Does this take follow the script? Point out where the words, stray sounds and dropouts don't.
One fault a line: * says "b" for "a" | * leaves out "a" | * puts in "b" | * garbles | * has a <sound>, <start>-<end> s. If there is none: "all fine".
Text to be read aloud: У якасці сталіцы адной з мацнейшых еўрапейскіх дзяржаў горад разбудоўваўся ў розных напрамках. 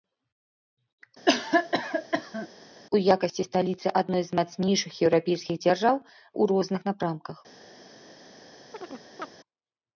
* has a cough, 1.3-2.5 s
* leaves out "горад разбудоўваўся"
* has a chirp, 8.7-9.3 s